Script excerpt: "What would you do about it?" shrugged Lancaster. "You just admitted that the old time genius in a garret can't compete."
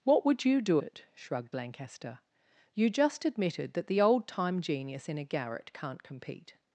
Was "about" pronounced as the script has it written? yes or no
no